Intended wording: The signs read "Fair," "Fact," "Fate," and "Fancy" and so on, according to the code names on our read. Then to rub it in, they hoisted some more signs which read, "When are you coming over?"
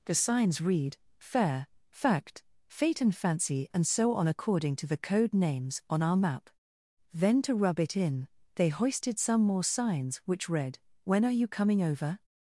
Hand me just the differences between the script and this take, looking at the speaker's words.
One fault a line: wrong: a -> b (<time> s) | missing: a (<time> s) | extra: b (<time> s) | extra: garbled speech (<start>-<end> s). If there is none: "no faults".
wrong: read -> map (6.2 s)